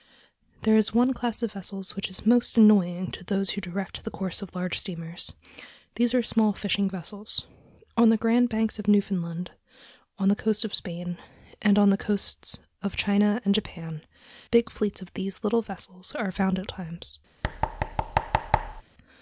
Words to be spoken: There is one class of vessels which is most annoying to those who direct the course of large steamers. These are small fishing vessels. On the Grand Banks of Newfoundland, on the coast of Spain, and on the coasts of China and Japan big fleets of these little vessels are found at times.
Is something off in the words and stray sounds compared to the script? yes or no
yes